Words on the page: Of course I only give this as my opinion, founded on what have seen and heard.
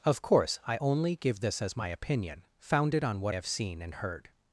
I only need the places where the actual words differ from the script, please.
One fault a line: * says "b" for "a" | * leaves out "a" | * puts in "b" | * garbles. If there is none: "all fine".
all fine